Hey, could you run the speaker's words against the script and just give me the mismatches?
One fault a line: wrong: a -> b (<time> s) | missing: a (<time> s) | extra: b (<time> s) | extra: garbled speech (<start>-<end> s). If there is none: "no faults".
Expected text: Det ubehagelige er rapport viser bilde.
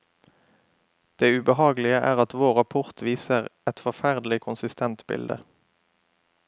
extra: at vår (2.2 s)
extra: et forferdelig konsistent (3.7 s)